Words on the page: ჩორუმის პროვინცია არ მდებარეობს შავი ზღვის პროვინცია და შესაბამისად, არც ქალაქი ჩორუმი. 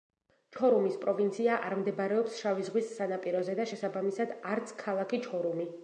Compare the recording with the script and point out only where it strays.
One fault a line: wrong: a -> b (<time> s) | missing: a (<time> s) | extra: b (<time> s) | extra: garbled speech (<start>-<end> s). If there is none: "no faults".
wrong: პროვინცია -> სანაპიროზე (3.0 s)